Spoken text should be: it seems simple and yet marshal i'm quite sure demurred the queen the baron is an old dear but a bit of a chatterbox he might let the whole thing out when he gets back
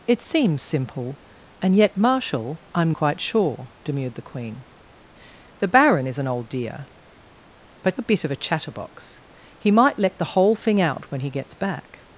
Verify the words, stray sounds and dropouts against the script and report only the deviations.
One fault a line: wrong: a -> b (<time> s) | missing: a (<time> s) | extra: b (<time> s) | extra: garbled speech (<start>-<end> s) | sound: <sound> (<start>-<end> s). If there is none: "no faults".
no faults